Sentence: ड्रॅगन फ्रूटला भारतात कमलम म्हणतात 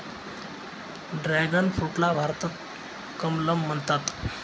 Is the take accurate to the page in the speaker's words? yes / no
yes